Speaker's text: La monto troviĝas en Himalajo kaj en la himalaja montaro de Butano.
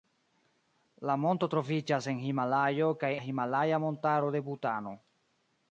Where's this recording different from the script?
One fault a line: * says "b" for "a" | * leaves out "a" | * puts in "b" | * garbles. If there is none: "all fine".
* leaves out "en"